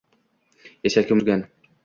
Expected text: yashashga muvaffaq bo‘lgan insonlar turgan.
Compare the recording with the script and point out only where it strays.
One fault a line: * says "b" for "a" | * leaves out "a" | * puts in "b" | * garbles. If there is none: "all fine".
* leaves out "muvaffaq bo‘lgan insonlar"